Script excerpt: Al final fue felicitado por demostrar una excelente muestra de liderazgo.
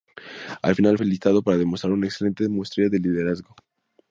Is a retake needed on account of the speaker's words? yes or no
yes